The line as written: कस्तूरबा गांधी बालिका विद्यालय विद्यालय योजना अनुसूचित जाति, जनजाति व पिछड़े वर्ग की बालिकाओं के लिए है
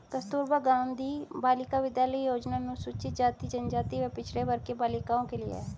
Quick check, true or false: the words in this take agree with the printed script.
false